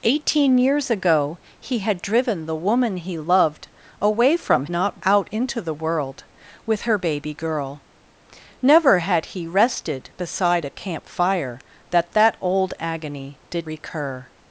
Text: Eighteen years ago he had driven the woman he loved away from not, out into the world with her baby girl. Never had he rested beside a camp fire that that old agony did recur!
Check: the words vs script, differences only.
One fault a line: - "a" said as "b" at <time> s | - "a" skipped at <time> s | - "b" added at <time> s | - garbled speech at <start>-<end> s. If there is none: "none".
none